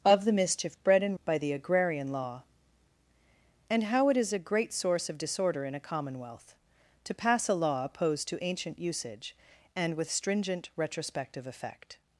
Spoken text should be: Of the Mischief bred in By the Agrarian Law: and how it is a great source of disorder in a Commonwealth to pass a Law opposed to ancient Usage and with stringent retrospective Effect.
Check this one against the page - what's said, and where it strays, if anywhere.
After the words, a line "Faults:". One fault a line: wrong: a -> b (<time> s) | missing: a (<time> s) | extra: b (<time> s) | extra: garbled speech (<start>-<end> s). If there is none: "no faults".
Of the Mischief bred in By the Agrarian Law: and how it is a great source of disorder in a Commonwealth to pass a Law opposed to ancient Usage and with stringent retrospective Effect.
Faults:
no faults